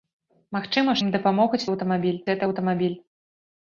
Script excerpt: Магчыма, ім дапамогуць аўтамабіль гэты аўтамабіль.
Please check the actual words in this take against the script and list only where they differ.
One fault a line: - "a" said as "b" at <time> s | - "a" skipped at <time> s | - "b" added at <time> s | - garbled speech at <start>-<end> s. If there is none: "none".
none